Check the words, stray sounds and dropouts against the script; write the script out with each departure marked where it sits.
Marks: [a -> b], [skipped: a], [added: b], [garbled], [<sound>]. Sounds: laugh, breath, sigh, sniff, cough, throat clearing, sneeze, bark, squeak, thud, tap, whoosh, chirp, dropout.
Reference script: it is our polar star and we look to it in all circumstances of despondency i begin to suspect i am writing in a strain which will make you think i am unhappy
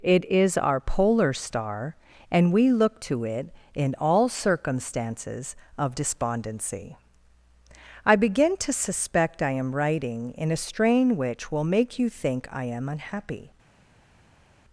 it is our polar star and we look to it in all circumstances of despondency i begin to suspect i am writing in a strain which will make you think i am unhappy